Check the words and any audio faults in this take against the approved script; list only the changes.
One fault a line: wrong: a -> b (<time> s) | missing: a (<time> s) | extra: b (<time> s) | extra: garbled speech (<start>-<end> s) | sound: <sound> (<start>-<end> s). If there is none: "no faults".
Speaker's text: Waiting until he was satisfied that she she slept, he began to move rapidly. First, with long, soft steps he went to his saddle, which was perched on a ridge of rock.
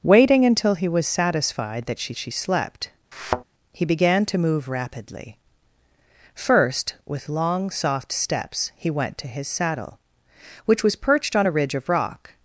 sound: thud (3.1-3.4 s)